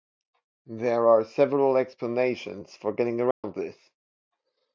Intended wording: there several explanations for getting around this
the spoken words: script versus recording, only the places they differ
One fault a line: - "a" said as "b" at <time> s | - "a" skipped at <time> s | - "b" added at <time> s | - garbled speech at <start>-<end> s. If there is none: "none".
- "are" added at 1.1 s